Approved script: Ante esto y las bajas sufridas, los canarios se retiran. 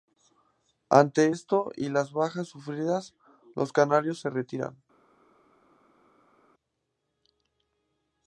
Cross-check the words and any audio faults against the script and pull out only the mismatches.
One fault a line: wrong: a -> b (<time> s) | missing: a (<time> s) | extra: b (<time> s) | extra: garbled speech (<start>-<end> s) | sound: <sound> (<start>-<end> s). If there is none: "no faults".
no faults